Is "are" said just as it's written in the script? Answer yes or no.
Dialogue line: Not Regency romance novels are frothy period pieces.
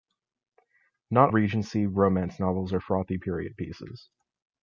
yes